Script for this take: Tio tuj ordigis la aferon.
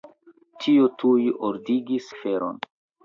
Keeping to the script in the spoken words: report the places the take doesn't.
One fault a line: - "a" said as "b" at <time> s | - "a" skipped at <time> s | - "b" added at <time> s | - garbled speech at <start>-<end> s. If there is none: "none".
- "la" skipped at 2.1 s